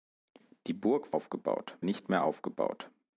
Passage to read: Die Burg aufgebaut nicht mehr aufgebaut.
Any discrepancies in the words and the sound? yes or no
no